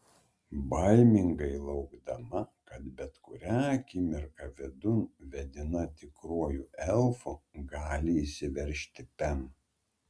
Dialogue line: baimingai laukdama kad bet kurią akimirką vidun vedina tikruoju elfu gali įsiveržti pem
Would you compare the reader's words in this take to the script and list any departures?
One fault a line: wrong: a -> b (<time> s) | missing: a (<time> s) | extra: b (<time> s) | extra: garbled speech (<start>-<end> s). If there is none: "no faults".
no faults